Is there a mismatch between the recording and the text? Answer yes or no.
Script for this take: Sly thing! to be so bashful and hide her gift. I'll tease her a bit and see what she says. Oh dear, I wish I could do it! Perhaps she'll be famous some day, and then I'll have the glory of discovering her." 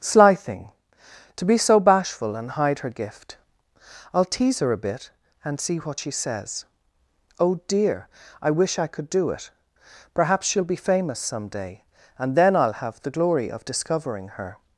no